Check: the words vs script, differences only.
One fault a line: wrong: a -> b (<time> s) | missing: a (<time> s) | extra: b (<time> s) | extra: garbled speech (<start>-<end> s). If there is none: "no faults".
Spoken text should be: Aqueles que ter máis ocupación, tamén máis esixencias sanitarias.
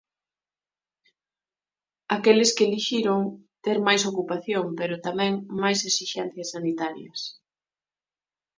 extra: elixiron (2.7 s)
extra: pero (4.8 s)